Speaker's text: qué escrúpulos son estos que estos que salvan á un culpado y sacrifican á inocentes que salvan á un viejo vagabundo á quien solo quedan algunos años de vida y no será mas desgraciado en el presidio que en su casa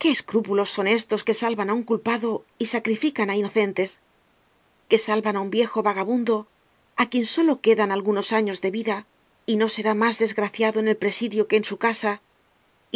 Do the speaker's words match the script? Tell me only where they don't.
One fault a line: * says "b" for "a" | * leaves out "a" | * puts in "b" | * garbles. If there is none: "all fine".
* leaves out "estos que"